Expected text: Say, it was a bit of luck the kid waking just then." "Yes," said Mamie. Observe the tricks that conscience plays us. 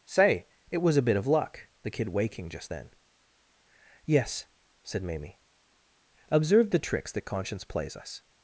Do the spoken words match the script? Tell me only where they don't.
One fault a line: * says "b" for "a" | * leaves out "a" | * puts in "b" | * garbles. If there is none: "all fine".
all fine